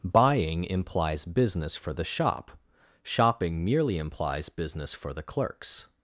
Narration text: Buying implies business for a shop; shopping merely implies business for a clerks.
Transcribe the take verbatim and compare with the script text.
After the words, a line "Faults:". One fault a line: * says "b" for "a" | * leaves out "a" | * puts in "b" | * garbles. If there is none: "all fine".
Buying implies business for the shop; shopping merely implies business for the clerks.
Faults:
* says "the" for "a"
* says "the" for "a"